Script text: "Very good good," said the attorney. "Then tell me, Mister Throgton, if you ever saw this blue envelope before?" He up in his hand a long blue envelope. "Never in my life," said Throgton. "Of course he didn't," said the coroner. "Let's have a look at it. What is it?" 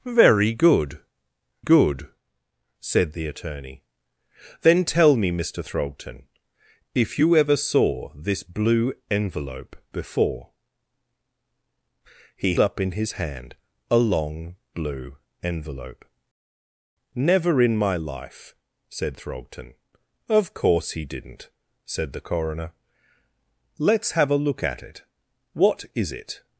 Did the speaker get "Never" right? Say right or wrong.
right